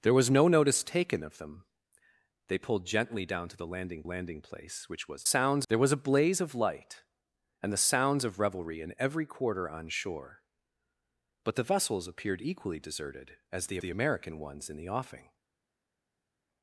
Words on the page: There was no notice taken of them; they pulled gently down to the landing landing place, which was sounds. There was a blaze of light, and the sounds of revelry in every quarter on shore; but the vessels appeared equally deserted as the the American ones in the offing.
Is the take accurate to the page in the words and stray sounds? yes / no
yes